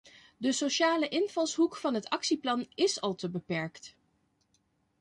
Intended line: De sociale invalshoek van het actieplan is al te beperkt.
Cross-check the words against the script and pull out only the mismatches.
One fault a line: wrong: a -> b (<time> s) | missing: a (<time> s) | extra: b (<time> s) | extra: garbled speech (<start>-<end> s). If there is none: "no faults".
no faults